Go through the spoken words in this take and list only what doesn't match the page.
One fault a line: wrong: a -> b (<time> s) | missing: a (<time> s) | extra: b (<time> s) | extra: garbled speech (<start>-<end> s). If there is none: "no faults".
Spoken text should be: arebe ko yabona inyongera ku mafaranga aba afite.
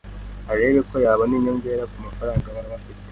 extra: aba (2.7 s)